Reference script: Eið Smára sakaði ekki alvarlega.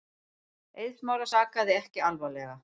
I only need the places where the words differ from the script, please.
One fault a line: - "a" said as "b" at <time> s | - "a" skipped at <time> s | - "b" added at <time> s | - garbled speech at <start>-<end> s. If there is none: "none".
none